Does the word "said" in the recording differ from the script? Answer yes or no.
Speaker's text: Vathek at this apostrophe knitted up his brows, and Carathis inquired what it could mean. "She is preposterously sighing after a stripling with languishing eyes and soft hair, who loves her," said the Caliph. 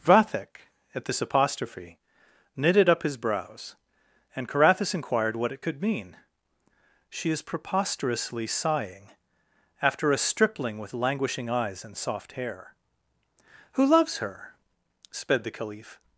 yes